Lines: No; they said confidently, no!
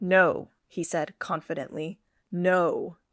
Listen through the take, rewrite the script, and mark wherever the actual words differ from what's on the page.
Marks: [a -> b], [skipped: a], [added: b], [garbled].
No; [they -> he] said confidently, no!